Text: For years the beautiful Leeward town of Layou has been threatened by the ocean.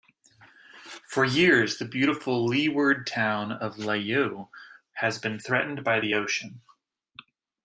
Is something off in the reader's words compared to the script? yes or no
no